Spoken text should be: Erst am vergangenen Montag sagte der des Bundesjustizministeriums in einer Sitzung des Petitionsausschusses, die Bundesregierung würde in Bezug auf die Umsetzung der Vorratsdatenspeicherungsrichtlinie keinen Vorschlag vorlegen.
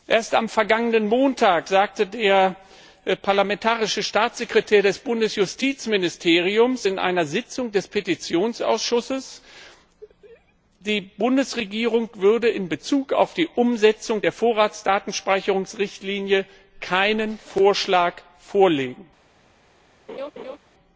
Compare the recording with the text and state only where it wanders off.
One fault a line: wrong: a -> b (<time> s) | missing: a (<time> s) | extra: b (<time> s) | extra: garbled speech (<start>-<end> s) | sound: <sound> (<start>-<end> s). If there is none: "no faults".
extra: parlamentarische Staatssekretär (3.2 s)
sound: laugh (20.1-20.6 s)